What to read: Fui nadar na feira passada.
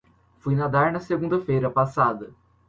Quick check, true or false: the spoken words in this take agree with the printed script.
false